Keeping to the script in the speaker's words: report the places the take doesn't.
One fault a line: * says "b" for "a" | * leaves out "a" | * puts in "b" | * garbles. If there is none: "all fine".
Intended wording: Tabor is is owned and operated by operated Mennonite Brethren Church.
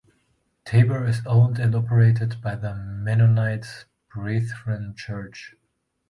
* leaves out "is"
* says "the" for "operated"